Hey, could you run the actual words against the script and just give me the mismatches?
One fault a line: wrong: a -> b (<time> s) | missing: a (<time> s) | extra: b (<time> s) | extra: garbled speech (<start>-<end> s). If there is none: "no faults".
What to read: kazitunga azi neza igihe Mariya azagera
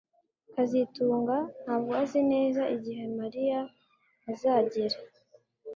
extra: ntabwo (1.6 s)